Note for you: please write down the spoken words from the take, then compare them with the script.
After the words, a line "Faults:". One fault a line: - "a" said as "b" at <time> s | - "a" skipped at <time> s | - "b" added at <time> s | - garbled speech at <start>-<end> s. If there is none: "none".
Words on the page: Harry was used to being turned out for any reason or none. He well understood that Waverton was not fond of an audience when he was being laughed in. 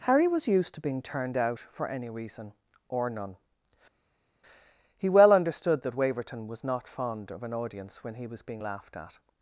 Harry was used to being turned out for any reason or none. He well understood that Waverton was not fond of an audience when he was being laughed at.
Faults:
- "in" said as "at" at 8.9 s